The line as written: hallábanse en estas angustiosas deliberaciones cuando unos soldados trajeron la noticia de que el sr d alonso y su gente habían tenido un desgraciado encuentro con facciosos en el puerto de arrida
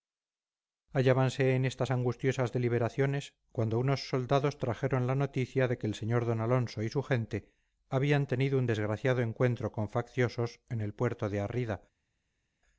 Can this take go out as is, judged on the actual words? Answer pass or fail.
pass